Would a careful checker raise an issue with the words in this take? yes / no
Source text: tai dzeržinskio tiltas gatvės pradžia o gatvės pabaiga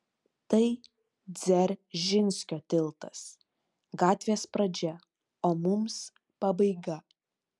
yes